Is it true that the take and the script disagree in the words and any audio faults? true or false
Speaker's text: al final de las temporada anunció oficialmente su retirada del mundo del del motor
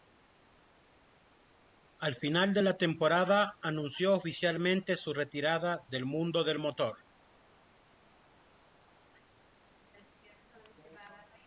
true